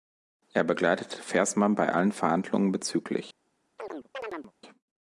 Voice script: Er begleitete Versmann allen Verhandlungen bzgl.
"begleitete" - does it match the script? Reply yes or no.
yes